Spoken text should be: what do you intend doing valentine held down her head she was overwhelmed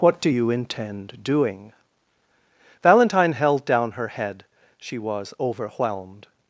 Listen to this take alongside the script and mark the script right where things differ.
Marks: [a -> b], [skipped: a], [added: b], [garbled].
what do you intend doing valentine held down her head she was overwhelmed